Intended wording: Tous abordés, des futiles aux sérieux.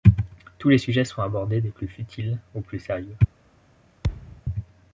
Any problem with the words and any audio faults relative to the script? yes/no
yes